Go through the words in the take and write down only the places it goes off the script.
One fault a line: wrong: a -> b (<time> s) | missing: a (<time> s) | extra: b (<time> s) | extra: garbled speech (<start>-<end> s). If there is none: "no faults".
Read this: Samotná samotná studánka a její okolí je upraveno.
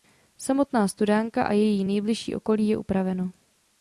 missing: samotná (0.9 s)
extra: nejbližší (1.8 s)